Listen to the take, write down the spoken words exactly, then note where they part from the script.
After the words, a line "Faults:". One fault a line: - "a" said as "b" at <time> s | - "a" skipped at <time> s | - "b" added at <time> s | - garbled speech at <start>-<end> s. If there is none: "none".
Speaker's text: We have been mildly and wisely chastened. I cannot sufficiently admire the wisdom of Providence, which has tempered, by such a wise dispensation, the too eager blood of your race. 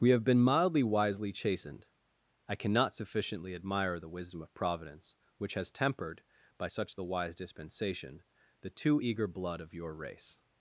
We have been mildly wisely chastened. I cannot sufficiently admire the wisdom of Providence, which has tempered, by such the wise dispensation, the too eager blood of your race.
Faults:
- "and" skipped at 0.8 s
- "a" said as "the" at 6.9 s